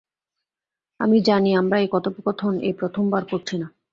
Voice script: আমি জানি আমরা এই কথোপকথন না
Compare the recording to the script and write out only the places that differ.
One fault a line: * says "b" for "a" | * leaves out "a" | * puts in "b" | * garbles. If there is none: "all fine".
* puts in "এই প্রথমবার করছি"